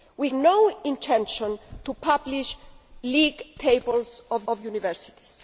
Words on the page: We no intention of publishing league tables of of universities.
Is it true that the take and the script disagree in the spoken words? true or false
false